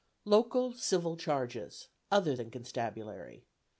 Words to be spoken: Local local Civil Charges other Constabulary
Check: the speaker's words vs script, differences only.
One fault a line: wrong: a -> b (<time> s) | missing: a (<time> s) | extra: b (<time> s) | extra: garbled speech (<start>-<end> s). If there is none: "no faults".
missing: local (0.7 s)
extra: than (2.3 s)